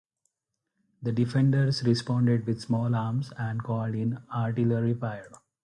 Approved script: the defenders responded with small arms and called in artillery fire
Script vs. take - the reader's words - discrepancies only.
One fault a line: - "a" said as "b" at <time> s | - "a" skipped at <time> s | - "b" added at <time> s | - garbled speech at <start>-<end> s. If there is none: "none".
none